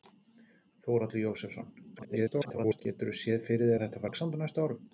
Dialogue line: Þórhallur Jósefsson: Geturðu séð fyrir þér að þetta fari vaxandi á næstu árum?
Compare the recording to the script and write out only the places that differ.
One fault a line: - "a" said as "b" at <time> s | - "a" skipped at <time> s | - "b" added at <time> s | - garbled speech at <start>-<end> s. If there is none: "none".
- garbled speech at 2.0-2.8 s
- "þér" skipped at 3.7 s
- "fari" skipped at 4.1 s